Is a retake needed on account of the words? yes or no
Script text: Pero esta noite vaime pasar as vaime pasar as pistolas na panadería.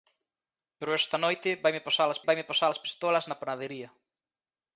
no